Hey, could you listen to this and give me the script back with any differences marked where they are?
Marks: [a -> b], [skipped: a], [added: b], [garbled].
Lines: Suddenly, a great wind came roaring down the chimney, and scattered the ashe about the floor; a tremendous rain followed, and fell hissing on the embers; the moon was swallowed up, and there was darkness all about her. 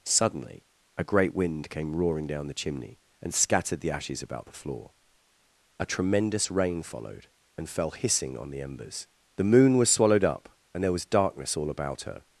Suddenly, a great wind came roaring down the chimney, and scattered the [ashe -> ashes] about the floor; a tremendous rain followed, and fell hissing on the embers; the moon was swallowed up, and there was darkness all about her.